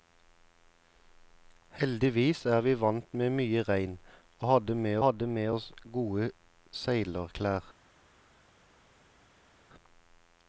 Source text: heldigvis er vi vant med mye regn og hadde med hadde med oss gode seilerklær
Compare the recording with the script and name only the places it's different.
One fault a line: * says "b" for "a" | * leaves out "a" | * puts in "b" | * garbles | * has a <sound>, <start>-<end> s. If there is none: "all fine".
all fine